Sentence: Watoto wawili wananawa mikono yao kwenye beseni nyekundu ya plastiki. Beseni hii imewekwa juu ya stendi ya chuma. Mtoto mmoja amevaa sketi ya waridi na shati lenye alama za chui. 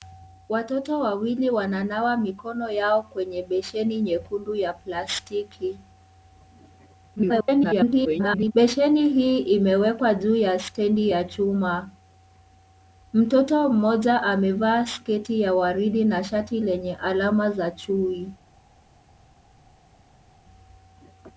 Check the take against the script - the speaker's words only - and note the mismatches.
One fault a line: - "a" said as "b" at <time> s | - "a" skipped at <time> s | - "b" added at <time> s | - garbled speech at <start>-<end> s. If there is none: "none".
- garbled speech at 7.2-8.5 s